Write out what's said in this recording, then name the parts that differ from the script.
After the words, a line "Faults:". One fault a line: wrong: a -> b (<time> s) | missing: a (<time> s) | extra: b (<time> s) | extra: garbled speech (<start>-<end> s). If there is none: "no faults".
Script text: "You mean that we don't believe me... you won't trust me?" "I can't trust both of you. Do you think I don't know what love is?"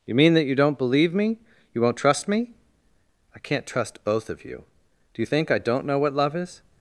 "You mean that you don't believe me... you won't trust me?" "I can't trust both of you. Do you think I don't know what love is?"
Faults:
wrong: we -> you (0.5 s)